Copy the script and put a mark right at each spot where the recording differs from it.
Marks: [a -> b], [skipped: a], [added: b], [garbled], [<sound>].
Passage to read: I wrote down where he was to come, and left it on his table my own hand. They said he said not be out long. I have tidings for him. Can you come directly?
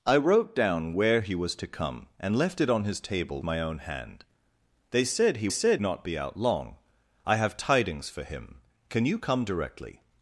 I wrote down where he was to come, and left it on his table my own hand. They said he said not be out long. I have tidings for him. Can you come directly?